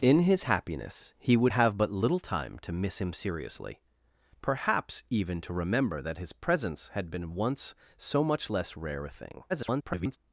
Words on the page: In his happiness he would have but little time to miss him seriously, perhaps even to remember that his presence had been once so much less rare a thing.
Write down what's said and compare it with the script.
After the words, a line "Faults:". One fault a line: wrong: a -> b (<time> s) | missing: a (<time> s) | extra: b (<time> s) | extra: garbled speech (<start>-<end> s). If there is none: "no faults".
In his happiness he would have but little time to miss him seriously, perhaps even to remember that his presence had been once so much less rare a thing. [garbled]
Faults:
extra: garbled speech (9.5-10.2 s)